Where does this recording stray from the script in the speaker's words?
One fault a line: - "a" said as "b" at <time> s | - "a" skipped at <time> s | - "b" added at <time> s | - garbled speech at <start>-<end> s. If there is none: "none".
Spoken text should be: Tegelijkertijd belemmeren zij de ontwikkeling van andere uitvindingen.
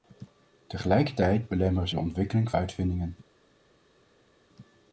- "zij" skipped at 1.9 s
- "van andere" skipped at 2.5 s